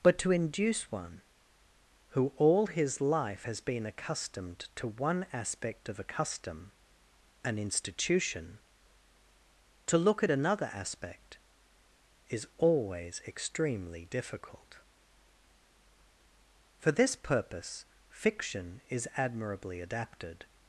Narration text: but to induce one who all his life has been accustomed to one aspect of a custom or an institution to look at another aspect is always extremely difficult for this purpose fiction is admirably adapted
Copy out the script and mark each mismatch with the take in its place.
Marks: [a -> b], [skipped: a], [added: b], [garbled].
but to induce one who all his life has been accustomed to one aspect of a custom [skipped: or] an institution to look at another aspect is always extremely difficult for this purpose fiction is admirably adapted